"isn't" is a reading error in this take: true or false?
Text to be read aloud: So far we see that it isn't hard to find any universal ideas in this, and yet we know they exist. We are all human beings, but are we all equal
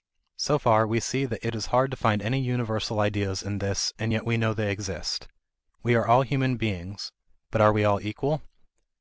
true